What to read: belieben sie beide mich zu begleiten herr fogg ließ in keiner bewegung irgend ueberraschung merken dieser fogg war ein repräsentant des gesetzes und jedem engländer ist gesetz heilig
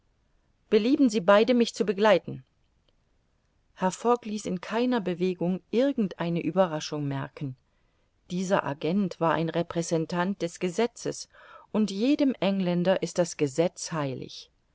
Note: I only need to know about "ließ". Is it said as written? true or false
true